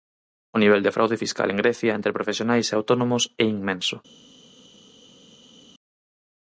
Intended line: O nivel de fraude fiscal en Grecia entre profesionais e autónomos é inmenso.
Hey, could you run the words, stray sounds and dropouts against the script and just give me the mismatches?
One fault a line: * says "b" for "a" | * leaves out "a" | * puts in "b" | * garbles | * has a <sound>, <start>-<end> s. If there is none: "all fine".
all fine